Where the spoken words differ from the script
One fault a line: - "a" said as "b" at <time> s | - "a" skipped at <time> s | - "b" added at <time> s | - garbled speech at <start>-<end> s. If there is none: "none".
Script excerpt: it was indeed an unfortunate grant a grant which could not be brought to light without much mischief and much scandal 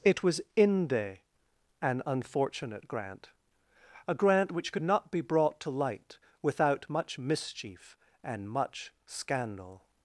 - "indeed" said as "inde" at 0.6 s